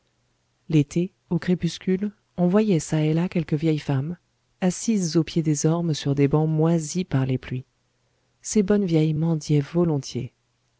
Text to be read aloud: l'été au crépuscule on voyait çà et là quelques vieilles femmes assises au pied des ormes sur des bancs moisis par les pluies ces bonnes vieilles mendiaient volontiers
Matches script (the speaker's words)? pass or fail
pass